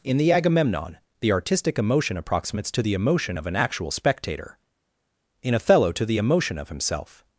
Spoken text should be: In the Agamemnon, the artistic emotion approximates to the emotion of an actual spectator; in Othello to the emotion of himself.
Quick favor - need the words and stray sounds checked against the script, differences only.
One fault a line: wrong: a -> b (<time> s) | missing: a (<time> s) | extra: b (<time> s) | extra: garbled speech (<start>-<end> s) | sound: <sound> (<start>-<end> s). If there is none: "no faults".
no faults